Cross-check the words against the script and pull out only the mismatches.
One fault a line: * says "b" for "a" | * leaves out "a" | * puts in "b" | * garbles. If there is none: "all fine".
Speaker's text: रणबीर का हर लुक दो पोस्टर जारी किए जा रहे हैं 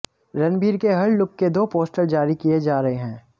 * says "के" for "का"
* puts in "के"